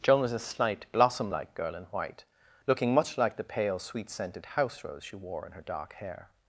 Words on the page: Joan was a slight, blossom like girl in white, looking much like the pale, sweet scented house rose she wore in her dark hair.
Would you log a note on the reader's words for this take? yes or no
no